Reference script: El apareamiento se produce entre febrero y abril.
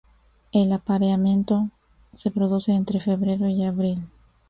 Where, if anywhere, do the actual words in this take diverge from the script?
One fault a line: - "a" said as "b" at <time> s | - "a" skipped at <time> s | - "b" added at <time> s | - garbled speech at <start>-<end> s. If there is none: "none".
none